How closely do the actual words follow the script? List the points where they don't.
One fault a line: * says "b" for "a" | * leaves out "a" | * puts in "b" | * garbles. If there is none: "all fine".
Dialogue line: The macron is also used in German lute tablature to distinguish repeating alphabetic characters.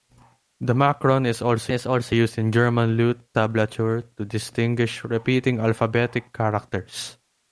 * puts in "is also"